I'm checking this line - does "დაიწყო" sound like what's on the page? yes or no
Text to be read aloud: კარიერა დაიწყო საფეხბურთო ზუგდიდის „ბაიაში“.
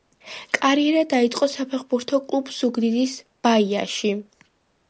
yes